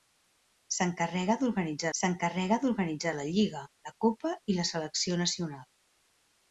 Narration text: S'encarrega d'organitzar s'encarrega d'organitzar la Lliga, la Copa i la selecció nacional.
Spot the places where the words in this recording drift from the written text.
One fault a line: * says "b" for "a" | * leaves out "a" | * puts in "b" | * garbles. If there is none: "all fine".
all fine